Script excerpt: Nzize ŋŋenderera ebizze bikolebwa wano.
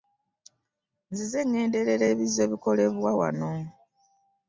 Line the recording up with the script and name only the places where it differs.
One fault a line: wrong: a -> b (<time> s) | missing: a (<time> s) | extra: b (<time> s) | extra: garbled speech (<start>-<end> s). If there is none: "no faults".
no faults